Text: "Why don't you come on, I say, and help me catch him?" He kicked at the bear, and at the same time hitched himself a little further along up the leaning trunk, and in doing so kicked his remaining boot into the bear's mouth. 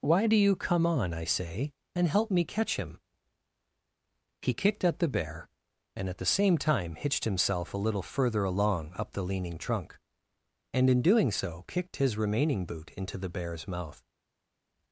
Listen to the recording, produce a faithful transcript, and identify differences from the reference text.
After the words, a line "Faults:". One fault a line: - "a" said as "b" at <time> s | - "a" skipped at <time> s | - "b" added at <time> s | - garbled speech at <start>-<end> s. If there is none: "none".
"Why do you come on, I say, and help me catch him?" He kicked at the bear, and at the same time hitched himself a little further along up the leaning trunk, and in doing so kicked his remaining boot into the bear's mouth.
Faults:
- "don't" said as "do" at 0.2 s